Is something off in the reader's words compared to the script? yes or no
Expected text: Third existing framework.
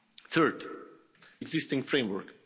no